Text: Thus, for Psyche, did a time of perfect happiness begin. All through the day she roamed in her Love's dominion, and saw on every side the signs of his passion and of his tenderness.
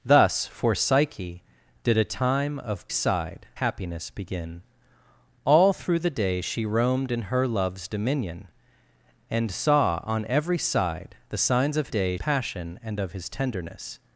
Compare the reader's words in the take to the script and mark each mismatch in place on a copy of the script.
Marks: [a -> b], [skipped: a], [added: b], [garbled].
Thus, for Psyche, did a time of [perfect -> side] happiness begin. All through the day she roamed in her Love's dominion, and saw on every side the signs of [his -> day] passion and of his tenderness.